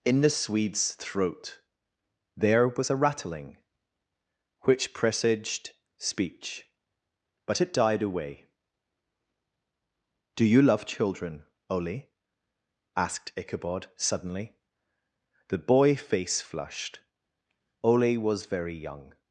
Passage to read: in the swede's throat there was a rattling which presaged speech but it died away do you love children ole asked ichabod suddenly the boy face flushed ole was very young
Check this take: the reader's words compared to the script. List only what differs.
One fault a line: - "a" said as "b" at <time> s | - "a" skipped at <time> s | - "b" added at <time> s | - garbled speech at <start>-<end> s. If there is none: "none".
none